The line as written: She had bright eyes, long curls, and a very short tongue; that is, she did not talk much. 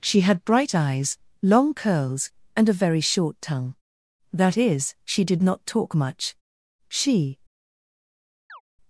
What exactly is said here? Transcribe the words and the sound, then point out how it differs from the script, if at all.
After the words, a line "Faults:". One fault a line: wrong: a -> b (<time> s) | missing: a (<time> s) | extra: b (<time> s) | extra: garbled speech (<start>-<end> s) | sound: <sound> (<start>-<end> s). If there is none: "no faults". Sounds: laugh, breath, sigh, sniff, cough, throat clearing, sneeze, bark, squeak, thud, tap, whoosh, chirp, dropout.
She had bright eyes, long curls, and a very short tongue; that is, she did not talk much. She
Faults:
extra: She (6.9 s)
sound: chirp (8.5-8.6 s)